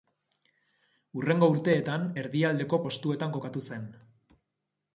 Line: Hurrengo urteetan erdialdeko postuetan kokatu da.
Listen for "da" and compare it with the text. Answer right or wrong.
wrong